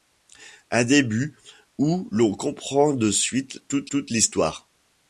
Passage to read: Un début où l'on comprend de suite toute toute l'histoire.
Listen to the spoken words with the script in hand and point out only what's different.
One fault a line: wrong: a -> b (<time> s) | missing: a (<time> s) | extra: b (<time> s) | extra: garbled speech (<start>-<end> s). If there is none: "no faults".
no faults